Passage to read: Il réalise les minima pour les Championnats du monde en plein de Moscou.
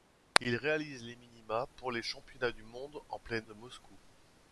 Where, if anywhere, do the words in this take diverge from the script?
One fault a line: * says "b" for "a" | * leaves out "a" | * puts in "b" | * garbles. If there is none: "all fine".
all fine